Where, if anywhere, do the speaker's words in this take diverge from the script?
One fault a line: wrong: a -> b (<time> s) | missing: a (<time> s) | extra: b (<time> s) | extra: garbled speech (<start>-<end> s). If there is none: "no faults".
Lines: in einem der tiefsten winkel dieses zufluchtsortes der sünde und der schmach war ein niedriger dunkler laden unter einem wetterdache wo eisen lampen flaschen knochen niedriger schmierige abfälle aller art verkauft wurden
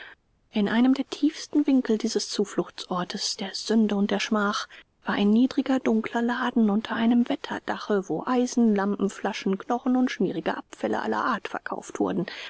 wrong: niedriger -> und (10.0 s)